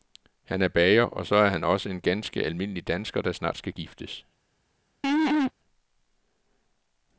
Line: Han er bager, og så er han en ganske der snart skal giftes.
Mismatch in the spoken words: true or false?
true